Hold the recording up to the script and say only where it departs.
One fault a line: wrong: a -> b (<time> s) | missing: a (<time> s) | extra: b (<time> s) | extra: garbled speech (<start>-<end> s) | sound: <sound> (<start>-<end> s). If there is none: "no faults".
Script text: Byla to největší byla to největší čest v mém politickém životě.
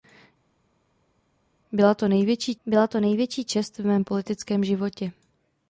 no faults